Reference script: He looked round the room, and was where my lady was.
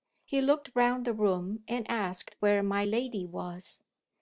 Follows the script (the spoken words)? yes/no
no